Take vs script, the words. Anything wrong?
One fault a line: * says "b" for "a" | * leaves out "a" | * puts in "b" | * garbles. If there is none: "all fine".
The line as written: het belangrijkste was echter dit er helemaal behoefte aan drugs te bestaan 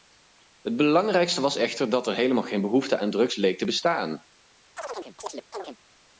* says "dat" for "dit"
* puts in "geen"
* puts in "leek"